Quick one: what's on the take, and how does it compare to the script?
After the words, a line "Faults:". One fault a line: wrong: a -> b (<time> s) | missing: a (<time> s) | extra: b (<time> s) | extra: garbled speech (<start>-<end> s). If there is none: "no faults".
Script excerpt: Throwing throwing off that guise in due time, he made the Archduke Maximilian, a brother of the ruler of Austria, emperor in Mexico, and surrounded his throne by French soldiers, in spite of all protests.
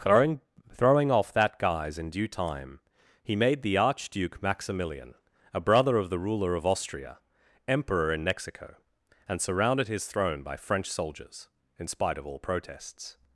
Throwing throwing off that guise in due time, he made the Archduke Maximilian, a brother of the ruler of Austria, emperor in Mexico, and surrounded his throne by French soldiers, in spite of all protests.
Faults:
no faults